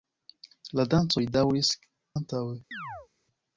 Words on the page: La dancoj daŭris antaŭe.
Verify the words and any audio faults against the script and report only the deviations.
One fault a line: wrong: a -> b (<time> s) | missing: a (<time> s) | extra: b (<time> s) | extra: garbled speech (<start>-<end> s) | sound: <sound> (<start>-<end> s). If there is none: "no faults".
sound: chirp (2.7-3.1 s)